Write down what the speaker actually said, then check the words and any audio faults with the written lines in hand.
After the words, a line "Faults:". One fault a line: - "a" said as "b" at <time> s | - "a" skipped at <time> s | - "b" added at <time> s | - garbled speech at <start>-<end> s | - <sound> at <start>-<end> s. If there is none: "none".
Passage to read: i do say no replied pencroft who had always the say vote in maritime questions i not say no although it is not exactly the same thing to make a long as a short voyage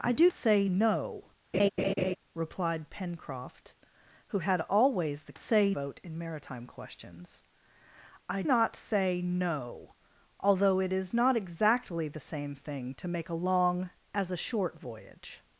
i do say no replied pencroft who had always the say vote in maritime questions i not say no although it is not exactly the same thing to make a long as a short voyage
Faults:
- laugh at 1.5-2.2 s